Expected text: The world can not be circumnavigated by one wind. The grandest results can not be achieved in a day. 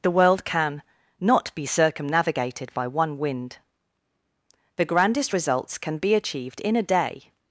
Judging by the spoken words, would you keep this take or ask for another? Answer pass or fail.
fail